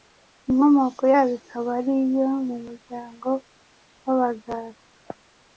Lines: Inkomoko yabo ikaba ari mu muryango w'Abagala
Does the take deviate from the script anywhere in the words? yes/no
yes